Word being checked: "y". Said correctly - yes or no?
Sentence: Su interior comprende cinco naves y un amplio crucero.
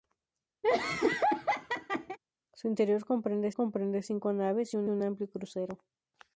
yes